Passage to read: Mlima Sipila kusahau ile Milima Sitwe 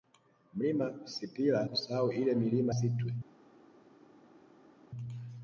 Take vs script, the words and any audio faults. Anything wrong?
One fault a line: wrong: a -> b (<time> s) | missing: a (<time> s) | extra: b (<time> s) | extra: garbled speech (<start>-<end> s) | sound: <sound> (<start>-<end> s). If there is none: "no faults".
no faults